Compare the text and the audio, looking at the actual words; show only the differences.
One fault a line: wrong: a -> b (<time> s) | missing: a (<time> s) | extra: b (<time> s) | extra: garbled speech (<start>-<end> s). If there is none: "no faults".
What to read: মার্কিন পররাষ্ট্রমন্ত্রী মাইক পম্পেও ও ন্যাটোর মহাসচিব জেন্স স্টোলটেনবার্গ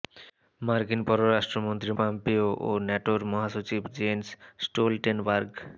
missing: মাইক (1.9 s)